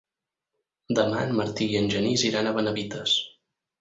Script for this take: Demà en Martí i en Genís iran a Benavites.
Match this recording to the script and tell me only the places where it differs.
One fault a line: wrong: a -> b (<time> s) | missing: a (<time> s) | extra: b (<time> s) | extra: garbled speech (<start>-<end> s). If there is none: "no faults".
no faults